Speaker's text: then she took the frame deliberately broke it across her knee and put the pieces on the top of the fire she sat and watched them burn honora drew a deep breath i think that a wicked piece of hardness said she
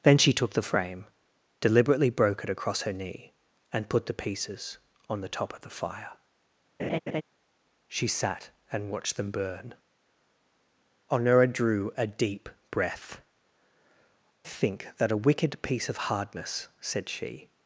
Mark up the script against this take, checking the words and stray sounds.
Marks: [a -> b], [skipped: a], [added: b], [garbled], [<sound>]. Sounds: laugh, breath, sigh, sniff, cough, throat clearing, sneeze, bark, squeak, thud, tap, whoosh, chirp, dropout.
then she took the frame deliberately broke it across her knee and put the pieces on the top of the fire [laugh] she sat and watched them burn honora drew a deep breath [skipped: i] think that a wicked piece of hardness said she